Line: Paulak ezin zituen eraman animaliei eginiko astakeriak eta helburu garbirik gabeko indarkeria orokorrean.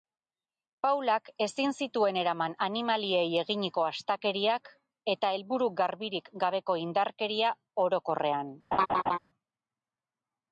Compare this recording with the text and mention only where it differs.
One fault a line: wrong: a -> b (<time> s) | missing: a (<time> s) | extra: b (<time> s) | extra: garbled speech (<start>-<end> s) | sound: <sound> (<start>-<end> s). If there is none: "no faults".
sound: laugh (8.7-9.2 s)